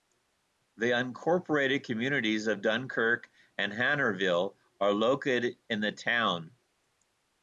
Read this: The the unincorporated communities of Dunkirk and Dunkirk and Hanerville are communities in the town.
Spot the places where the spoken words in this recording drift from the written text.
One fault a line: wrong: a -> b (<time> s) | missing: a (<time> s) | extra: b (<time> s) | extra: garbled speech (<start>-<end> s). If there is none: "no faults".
missing: the (0.9 s)
missing: Dunkirk and (3.7 s)
wrong: communities -> located (4.9 s)